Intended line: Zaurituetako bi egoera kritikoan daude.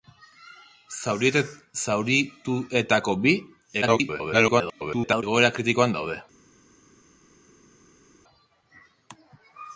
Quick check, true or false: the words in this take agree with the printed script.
false